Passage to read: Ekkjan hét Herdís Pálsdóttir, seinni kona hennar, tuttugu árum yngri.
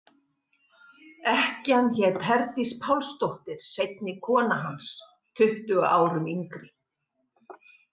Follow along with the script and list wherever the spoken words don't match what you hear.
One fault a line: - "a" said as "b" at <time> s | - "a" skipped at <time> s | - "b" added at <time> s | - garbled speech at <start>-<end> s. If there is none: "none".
- "hennar" said as "hans" at 4.6 s